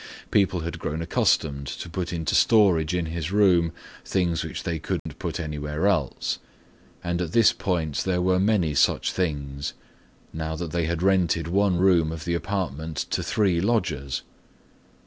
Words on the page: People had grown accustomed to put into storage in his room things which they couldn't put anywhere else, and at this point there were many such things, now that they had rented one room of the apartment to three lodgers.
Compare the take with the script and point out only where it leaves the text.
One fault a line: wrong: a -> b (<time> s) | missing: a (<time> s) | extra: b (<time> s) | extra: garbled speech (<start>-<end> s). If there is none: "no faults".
no faults